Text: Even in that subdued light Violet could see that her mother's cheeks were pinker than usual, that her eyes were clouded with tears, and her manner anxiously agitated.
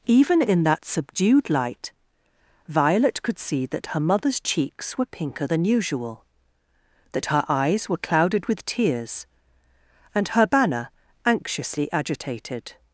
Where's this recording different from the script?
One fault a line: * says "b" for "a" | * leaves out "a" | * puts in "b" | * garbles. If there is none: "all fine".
* says "banner" for "manner"